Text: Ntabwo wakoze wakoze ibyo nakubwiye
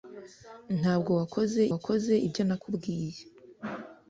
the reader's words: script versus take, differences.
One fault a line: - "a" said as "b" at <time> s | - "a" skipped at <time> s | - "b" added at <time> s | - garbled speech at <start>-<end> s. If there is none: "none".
none